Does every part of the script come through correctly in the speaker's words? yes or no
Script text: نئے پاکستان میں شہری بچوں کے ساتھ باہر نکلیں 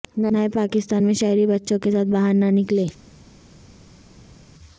no